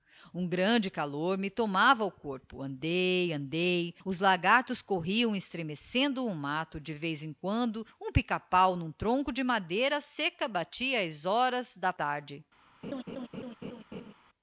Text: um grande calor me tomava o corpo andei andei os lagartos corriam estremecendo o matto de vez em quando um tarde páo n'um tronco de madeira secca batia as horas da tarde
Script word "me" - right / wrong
right